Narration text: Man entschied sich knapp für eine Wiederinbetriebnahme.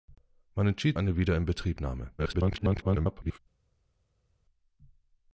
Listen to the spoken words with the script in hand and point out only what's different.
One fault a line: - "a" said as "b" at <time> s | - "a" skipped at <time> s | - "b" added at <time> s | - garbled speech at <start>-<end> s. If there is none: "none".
- "sich knapp für" skipped at 1.0 s
- garbled speech at 2.2-3.4 s